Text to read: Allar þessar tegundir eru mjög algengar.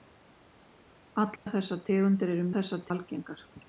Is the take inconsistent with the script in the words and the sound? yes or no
yes